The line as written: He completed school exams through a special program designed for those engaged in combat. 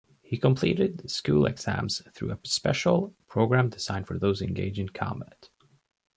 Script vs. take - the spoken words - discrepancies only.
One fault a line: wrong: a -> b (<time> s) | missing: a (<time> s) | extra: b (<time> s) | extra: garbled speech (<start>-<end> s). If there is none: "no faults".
no faults